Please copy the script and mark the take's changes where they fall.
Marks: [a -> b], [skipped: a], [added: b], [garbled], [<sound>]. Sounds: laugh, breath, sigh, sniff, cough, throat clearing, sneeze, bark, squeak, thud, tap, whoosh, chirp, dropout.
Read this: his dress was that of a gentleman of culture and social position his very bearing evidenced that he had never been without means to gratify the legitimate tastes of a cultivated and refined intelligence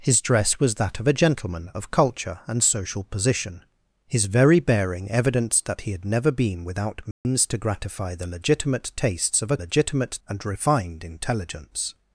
his dress was that of a gentleman of culture and social position his very bearing evidenced that he had never been without means [dropout] to gratify the legitimate tastes of a [cultivated -> legitimate] and refined intelligence